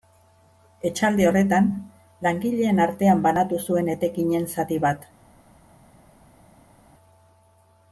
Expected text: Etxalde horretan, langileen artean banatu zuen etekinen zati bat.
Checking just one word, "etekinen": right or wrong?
right